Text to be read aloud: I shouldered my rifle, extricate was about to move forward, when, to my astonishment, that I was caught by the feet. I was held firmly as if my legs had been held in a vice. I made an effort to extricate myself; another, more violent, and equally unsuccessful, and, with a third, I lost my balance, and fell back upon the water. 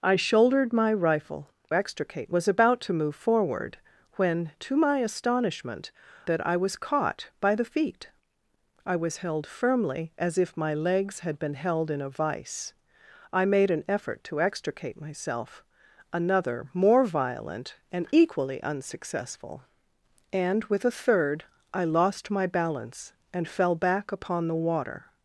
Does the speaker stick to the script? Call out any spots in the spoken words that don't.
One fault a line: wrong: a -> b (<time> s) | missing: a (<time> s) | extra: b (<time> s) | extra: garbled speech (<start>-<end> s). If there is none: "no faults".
no faults